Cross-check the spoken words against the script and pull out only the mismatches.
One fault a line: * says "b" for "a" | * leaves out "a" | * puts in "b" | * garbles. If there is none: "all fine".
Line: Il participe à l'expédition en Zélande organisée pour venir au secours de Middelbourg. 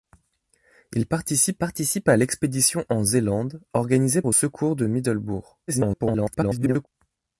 * puts in "participe"
* leaves out "pour venir"
* garbles